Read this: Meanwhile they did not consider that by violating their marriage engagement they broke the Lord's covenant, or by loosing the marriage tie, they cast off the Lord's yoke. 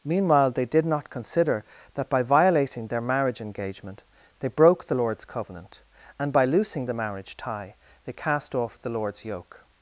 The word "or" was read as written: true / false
false